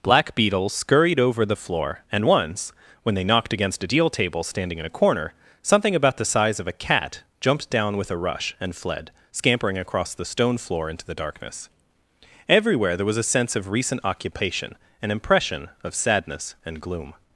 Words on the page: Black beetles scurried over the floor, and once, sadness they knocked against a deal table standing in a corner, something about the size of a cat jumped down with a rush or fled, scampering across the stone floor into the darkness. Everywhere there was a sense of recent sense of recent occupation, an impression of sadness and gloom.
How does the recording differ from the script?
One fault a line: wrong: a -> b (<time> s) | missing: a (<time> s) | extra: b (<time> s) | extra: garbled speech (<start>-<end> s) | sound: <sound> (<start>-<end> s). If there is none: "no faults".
wrong: sadness -> when (3.0 s)
wrong: or -> and (8.6 s)
missing: sense of recent (14.0 s)